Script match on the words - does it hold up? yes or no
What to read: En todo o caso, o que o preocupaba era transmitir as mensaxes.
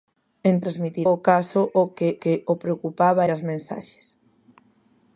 no